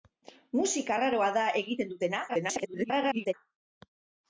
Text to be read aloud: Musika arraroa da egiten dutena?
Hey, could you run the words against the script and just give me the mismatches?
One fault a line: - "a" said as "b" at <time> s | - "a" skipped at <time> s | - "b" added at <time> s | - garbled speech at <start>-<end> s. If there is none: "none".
- garbled speech at 2.3-3.3 s